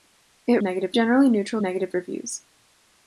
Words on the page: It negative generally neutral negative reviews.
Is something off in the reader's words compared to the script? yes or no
no